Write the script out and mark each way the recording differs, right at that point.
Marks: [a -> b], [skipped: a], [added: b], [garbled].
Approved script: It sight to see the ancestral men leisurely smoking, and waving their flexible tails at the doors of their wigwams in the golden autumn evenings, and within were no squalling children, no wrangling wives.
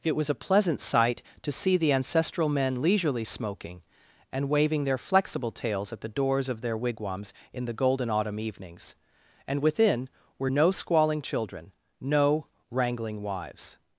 It [added: was a pleasant] sight to see the ancestral men leisurely smoking, and waving their flexible tails at the doors of their wigwams in the golden autumn evenings, and within were no squalling children, no wrangling wives.